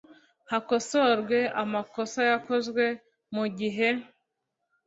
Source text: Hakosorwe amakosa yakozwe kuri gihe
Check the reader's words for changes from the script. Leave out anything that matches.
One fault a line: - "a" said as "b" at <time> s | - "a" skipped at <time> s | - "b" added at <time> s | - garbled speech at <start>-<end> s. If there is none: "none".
- "kuri" said as "mu" at 3.4 s